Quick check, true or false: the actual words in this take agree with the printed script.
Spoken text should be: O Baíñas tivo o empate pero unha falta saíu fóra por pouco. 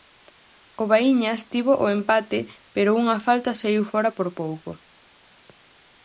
true